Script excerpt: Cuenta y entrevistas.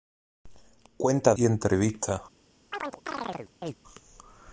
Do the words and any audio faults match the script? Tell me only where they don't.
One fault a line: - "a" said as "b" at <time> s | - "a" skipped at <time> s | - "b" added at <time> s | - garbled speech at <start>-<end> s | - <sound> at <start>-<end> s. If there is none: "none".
- chirp at 2.7-3.8 s